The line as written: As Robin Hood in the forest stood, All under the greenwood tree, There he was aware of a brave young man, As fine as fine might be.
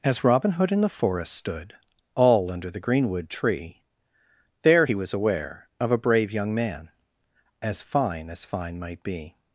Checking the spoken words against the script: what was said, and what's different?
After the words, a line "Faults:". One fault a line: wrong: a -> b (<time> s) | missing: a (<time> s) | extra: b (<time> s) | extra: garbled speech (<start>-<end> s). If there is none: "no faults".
As Robin Hood in the forest stood, All under the greenwood tree, There he was aware of a brave young man, As fine as fine might be.
Faults:
no faults